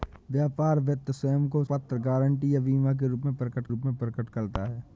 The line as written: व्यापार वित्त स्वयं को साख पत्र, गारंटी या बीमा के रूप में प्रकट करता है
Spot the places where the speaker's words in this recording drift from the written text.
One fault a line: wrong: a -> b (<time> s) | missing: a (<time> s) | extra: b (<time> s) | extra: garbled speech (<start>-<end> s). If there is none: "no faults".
missing: साख (1.6 s)
extra: रूप में प्रकट (3.7 s)